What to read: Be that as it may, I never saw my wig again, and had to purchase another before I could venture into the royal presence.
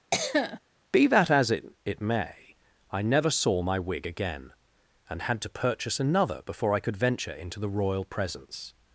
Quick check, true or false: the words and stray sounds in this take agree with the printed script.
false